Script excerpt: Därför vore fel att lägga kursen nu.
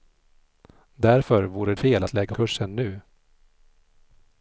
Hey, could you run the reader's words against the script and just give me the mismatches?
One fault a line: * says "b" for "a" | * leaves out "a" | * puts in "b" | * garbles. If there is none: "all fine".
all fine